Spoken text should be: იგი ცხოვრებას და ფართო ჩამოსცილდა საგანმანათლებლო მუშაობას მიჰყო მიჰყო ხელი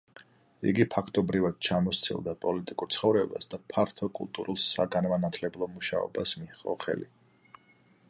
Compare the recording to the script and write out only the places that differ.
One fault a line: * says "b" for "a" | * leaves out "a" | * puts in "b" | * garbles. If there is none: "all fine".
* puts in "ფაქტობრივად ჩამოსცილდა პოლიტიკურ"
* says "კულტურულ" for "ჩამოსცილდა"
* leaves out "მიჰყო"